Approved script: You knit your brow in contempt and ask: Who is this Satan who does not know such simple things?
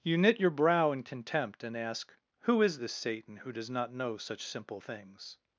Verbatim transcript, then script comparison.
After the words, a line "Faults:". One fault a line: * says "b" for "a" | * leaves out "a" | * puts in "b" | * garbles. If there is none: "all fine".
You knit your brow in contempt and ask: Who is this Satan who does not know such simple things?
Faults:
all fine